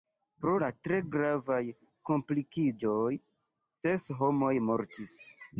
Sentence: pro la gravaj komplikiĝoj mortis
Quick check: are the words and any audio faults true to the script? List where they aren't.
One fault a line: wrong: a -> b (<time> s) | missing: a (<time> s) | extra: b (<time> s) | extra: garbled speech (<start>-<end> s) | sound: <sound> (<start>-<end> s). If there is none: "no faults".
extra: tre (0.9 s)
extra: ses homoj (3.8 s)